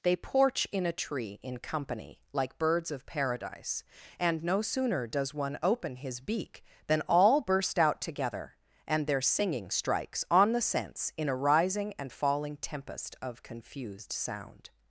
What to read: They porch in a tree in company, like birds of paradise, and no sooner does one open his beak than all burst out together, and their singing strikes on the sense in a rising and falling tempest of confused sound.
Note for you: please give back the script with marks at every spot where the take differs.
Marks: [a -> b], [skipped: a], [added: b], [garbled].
They porch in a tree in company, like birds of paradise, and no sooner does one open his beak than all burst out together, and their singing strikes on the sense in a rising and falling tempest of confused sound.